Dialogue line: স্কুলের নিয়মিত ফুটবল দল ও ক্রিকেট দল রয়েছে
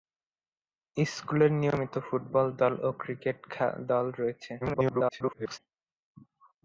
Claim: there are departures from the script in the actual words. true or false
true